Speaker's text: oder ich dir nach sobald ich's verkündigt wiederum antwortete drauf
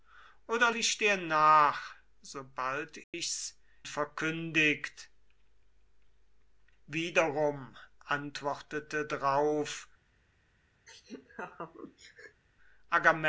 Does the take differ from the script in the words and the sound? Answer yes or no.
yes